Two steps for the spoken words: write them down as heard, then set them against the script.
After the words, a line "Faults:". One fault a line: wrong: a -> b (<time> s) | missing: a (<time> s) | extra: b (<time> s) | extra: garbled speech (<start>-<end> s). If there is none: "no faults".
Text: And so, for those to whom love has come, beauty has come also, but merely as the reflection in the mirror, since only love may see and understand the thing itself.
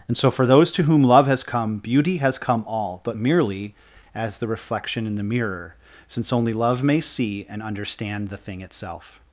And so, for those to whom love has come, beauty has come all, but merely as the reflection in the mirror, since only love may see and understand the thing itself.
Faults:
wrong: also -> all (2.7 s)